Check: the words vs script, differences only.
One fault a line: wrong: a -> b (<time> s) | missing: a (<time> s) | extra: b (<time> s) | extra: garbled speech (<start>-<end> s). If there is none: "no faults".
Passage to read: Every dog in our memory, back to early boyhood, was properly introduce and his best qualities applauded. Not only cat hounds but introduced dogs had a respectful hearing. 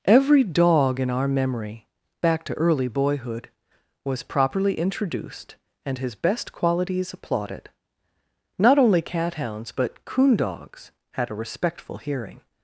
wrong: introduce -> introduced (4.8 s)
wrong: introduced -> coon (10.1 s)